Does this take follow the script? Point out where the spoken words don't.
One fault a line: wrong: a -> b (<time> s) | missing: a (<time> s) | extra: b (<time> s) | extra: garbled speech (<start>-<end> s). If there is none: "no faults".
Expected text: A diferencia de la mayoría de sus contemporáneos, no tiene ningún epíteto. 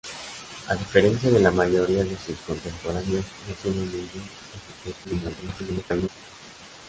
extra: garbled speech (5.0-6.1 s)